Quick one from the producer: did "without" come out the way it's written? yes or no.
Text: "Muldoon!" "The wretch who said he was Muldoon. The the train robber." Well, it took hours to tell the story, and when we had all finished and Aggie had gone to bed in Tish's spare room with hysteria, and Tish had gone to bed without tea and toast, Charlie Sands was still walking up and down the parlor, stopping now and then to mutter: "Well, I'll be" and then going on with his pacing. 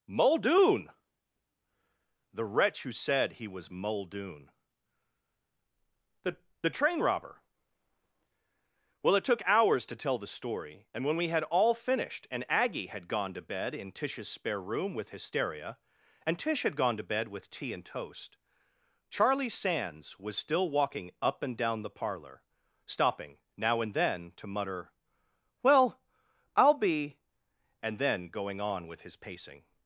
no